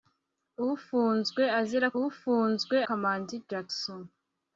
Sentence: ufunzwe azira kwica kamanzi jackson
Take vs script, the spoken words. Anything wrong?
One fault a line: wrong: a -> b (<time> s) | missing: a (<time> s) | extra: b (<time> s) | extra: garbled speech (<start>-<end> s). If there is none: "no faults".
wrong: kwica -> ufunzwe (2.0 s)